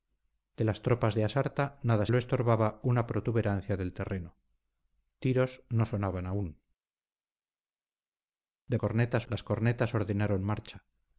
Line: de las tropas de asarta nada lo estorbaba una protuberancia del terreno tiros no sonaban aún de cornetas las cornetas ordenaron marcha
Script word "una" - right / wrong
right